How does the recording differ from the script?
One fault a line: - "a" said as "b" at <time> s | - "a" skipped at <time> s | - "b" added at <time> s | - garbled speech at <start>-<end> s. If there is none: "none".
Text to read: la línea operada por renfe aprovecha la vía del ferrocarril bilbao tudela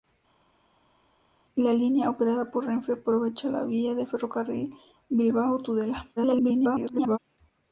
- garbled speech at 6.2-7.2 s